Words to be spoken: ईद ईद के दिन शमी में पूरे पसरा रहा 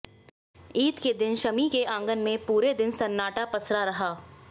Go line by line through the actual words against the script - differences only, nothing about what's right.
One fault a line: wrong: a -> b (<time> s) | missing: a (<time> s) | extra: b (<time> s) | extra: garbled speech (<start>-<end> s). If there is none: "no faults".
missing: ईद (1.0 s)
extra: के आंगन (1.7 s)
extra: दिन सन्नाटा (2.7 s)